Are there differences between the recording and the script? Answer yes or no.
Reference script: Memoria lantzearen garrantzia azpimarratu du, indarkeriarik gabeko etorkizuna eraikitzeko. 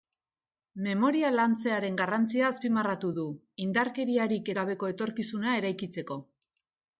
no